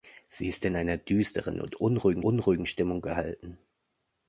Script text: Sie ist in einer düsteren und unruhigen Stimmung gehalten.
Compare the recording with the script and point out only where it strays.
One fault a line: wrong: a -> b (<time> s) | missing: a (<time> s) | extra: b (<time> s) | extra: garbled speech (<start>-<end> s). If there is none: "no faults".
extra: unruhigen (2.2 s)